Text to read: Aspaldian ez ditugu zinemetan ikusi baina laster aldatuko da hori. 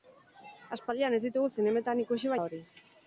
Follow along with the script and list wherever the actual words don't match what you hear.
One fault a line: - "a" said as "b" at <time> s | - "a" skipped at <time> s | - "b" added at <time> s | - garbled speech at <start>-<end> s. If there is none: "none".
- "baina laster aldatuko" skipped at 2.4 s